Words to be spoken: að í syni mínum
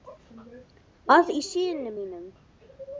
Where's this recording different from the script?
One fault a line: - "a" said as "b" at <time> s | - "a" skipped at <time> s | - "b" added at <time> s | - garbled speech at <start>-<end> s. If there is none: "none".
none